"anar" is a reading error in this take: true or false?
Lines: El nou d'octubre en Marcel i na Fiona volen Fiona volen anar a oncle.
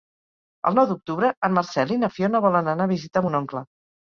true